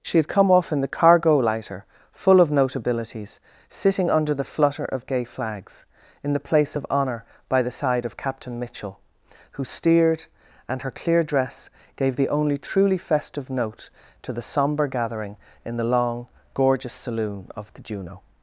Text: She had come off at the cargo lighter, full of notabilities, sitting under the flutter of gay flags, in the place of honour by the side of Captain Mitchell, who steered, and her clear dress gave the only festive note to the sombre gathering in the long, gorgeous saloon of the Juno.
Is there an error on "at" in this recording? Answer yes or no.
yes